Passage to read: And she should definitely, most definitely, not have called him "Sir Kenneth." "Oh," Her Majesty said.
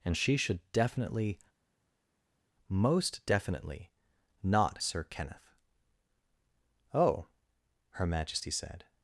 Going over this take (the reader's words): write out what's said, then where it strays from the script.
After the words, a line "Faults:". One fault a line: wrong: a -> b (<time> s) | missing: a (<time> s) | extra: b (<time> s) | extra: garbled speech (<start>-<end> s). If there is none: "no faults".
And she should definitely, most definitely, not "Sir Kenneth." "Oh," Her Majesty said.
Faults:
missing: have called him (4.8 s)